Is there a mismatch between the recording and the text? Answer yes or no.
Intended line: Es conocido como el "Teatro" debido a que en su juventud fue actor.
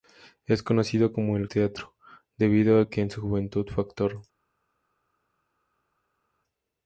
no